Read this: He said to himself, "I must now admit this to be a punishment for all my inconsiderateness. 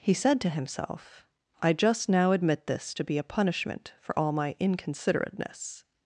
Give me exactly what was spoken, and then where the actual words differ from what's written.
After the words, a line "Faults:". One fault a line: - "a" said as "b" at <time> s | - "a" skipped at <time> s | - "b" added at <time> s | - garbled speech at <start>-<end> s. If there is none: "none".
He said to himself, "I just now admit this to be a punishment for all my inconsiderateness.
Faults:
- "must" said as "just" at 1.7 s